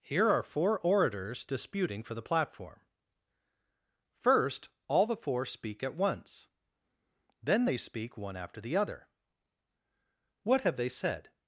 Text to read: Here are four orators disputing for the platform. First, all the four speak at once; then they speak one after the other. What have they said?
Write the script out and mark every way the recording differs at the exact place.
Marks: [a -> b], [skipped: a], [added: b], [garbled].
Here are four orators disputing for the platform. First, all the four speak at once; then they speak one after the other. What have they said?